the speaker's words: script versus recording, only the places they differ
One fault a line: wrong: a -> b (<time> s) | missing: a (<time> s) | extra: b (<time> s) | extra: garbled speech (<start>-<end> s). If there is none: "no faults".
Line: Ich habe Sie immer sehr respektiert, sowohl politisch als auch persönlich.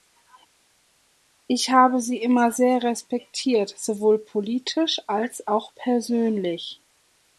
no faults